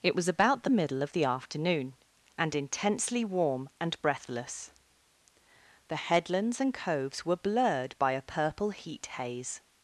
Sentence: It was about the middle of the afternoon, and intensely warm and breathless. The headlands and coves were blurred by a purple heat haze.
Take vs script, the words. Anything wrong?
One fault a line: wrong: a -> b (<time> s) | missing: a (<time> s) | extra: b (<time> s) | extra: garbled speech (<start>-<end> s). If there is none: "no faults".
no faults